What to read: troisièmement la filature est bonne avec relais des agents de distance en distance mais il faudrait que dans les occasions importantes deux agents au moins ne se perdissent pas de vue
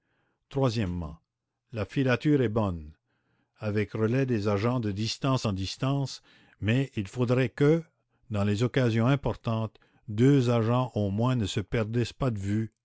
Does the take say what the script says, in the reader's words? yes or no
yes